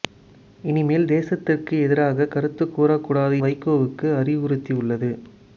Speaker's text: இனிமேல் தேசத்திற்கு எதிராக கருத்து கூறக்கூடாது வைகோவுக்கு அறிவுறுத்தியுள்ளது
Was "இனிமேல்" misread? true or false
false